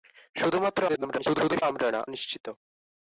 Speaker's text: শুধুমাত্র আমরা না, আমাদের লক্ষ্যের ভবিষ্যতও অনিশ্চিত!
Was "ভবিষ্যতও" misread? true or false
true